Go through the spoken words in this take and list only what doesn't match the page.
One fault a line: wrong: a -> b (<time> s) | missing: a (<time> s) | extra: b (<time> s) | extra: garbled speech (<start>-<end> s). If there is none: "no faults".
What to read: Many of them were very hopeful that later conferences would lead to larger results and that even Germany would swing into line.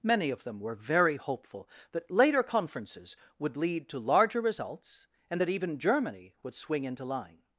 no faults